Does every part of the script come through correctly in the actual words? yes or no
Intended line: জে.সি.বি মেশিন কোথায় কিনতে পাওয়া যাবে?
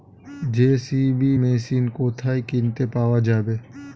yes